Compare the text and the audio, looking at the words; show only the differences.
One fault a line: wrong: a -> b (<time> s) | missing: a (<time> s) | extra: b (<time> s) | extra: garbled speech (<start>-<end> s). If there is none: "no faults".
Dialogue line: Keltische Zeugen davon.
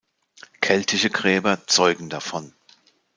extra: Gräber (1.1 s)